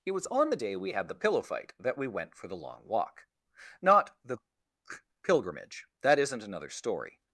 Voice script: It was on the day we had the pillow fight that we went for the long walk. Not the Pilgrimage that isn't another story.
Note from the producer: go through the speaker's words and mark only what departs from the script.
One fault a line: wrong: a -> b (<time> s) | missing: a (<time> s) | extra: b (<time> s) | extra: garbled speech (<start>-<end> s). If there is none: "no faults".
no faults